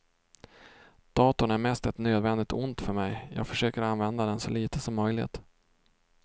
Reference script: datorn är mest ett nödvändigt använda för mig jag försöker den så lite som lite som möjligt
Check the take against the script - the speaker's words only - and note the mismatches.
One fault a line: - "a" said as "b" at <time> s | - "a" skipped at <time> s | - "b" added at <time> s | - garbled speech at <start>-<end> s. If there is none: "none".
- "använda" said as "ont" at 2.5 s
- "använda" added at 3.8 s
- "lite som" skipped at 5.0 s